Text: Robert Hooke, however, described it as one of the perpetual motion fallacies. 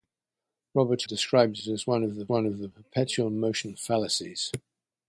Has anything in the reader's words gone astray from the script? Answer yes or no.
yes